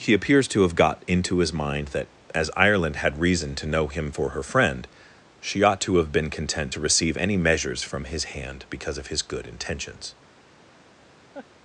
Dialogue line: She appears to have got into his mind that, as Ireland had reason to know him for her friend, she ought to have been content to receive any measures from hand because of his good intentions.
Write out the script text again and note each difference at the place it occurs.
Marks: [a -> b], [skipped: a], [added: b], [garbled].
[She -> He] appears to have got into his mind that, as Ireland had reason to know him for her friend, she ought to have been content to receive any measures from [added: his] hand because of his good intentions.